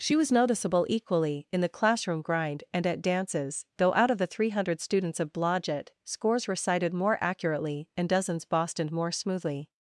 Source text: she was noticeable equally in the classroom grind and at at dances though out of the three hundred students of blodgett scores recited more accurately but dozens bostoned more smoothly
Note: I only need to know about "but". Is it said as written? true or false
false